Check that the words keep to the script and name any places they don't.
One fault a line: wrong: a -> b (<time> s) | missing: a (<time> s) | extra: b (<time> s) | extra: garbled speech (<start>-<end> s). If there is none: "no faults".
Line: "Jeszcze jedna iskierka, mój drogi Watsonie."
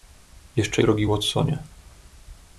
missing: jedna iskierka mój (0.8 s)